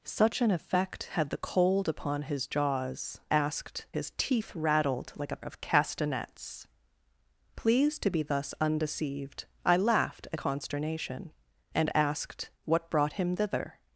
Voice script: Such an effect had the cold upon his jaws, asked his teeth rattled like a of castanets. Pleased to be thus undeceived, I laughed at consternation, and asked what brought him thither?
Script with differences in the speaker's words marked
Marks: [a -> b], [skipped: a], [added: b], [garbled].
Such an effect had the cold upon his jaws, asked his teeth rattled like a of castanets. Pleased to be thus undeceived, I laughed at consternation, and asked what brought him thither?